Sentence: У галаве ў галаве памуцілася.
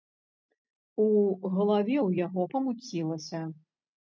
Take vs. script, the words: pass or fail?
fail